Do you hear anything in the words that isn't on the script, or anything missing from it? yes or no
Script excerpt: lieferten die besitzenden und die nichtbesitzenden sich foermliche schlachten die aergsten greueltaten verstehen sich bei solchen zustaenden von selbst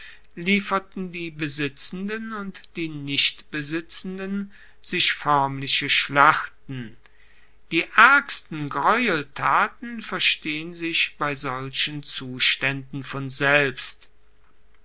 no